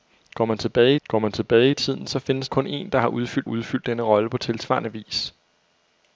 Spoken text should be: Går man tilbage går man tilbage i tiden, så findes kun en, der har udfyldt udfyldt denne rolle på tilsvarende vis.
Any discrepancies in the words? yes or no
no